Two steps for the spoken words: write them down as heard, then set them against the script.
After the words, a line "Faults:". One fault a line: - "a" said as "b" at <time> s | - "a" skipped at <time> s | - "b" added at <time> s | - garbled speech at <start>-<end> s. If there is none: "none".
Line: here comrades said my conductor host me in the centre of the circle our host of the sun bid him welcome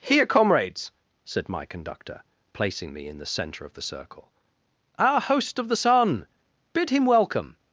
here comrades said my conductor placing me in the centre of the circle our host of the sun bid him welcome
Faults:
- "host" said as "placing" at 2.5 s